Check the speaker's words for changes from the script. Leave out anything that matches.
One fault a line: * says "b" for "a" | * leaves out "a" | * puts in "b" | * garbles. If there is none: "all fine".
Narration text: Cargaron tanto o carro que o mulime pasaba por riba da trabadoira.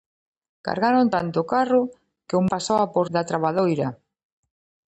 * leaves out "mulime"
* leaves out "riba"